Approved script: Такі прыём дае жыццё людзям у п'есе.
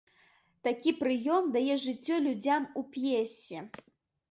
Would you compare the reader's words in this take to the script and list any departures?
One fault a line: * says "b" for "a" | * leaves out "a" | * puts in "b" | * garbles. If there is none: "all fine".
all fine